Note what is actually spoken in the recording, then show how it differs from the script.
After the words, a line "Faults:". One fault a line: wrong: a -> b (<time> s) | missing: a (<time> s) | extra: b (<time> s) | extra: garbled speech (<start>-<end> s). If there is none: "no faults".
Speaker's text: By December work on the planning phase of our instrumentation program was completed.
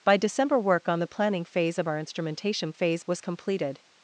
By December work on the planning phase of our instrumentation phase was completed.
Faults:
wrong: program -> phase (2.7 s)